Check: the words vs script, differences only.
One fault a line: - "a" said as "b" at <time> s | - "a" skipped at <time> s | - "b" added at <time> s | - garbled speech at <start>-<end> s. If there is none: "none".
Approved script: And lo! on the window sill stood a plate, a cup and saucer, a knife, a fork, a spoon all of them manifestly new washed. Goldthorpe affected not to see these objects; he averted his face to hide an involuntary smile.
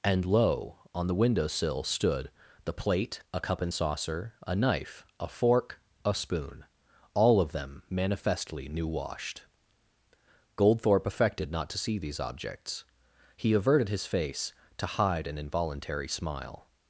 - "a" said as "the" at 2.6 s